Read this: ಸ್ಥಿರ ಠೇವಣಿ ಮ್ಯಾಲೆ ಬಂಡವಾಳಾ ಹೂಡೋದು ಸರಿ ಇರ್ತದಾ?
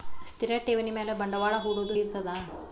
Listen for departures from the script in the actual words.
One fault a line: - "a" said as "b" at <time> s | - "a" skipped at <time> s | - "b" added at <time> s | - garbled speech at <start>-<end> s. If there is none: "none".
- "ಸರಿ" skipped at 1.9 s